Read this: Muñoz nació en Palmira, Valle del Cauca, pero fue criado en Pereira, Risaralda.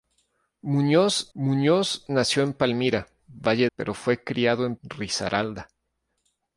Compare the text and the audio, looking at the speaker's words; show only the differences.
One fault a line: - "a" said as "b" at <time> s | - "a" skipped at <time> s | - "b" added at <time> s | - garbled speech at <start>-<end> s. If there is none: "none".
- "muñoz" added at 1.3 s
- "del Cauca" skipped at 3.7 s
- "Pereira" skipped at 4.8 s